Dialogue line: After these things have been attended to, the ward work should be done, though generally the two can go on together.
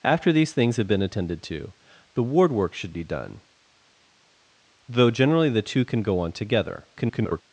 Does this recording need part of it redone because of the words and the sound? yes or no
yes